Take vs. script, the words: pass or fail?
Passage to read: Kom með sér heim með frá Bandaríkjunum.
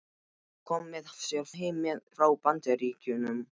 pass